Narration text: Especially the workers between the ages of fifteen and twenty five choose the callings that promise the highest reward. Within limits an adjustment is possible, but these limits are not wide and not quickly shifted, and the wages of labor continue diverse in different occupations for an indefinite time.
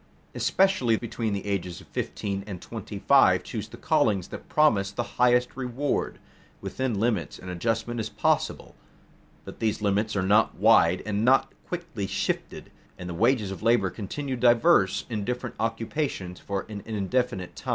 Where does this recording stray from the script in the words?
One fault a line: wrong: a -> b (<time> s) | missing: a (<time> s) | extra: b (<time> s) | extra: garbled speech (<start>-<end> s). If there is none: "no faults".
missing: the workers (0.9 s)